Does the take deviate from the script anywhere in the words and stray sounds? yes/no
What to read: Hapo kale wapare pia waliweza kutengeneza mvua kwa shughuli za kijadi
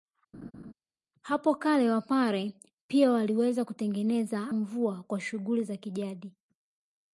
yes